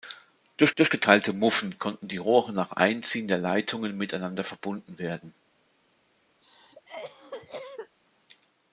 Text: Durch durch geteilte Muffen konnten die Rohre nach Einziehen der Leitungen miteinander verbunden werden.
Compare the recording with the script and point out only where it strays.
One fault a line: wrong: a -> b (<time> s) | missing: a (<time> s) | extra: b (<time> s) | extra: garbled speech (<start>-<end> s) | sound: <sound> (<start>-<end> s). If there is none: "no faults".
sound: cough (6.4-8.0 s)